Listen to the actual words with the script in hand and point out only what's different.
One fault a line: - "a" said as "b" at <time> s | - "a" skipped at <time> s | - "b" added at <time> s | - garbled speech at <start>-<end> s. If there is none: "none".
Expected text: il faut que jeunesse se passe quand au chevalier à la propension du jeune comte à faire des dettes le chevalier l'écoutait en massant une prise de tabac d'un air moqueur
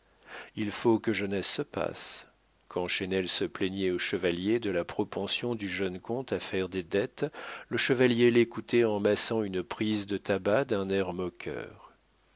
- "chesnel se plaignait" added at 2.9 s
- "à" said as "de" at 4.6 s